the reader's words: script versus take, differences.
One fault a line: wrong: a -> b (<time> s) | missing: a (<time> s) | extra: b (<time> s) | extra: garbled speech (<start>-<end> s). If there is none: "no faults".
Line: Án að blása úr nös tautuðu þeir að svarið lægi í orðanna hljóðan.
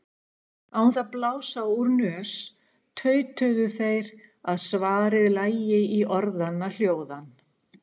no faults